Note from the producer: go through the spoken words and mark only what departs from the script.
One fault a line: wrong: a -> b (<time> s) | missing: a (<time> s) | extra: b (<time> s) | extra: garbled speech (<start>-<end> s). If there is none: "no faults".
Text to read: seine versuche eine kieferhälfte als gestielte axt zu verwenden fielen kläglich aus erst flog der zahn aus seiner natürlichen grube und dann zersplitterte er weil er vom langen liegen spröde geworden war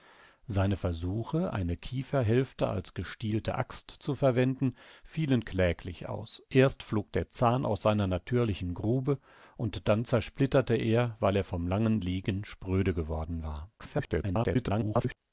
extra: garbled speech (13.8-15.2 s)